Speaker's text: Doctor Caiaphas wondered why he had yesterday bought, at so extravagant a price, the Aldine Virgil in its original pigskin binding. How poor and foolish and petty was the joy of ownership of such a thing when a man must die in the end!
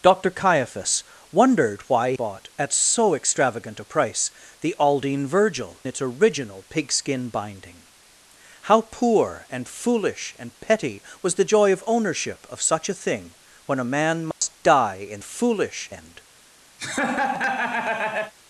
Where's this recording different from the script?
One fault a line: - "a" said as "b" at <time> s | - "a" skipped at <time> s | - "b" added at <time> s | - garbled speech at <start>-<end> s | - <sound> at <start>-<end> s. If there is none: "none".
- "he had yesterday" skipped at 2.1 s
- "in" skipped at 5.8 s
- dropout at 14.3-14.4 s
- "the" said as "foolish" at 15.2 s
- laugh at 16.8-18.3 s